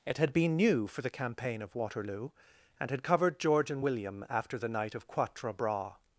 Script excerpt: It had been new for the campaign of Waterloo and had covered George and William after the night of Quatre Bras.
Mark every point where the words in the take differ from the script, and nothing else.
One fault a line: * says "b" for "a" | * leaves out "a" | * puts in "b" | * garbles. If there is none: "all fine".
all fine